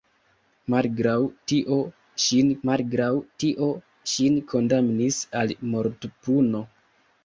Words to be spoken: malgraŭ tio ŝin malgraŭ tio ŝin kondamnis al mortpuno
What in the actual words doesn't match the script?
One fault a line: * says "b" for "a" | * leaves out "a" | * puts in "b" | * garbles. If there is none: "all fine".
all fine